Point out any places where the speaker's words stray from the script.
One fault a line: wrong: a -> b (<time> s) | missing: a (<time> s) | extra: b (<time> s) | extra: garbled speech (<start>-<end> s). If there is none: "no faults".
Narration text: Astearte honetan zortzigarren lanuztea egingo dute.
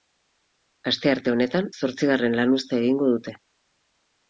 no faults